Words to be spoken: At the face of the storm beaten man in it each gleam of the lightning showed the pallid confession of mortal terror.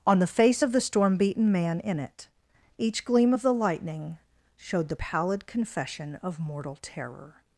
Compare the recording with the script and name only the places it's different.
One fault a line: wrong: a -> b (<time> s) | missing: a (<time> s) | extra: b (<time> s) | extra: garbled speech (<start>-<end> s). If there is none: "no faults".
wrong: At -> On (0.1 s)